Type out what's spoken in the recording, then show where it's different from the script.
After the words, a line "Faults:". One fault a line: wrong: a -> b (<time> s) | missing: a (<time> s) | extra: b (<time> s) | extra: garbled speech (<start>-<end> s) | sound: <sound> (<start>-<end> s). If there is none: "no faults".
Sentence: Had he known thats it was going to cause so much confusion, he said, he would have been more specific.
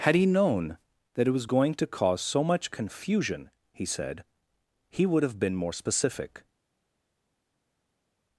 Had he known that it was going to cause so much confusion, he said, he would have been more specific.
Faults:
wrong: thats -> that (1.1 s)